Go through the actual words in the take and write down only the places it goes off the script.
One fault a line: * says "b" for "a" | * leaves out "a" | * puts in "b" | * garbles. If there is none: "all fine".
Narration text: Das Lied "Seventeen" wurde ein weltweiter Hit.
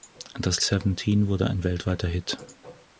* leaves out "Lied"